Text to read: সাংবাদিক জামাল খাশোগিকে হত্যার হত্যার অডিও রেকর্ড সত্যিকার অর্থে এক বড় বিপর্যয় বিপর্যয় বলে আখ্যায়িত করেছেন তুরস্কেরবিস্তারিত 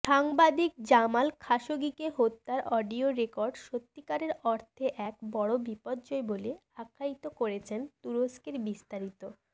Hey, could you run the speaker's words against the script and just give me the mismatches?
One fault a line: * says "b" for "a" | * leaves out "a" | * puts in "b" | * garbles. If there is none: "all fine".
* leaves out "হত্যার"
* leaves out "বিপর্যয়"